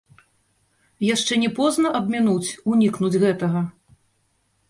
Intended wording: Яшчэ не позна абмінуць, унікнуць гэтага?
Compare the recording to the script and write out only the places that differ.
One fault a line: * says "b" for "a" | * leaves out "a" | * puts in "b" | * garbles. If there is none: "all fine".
all fine